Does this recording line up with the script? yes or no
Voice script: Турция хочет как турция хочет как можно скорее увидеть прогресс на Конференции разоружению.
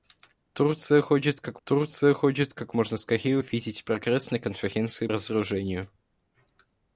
yes